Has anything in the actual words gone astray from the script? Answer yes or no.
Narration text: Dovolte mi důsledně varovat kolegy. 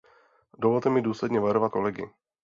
no